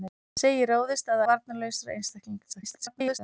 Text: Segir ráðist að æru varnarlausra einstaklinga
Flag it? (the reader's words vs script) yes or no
yes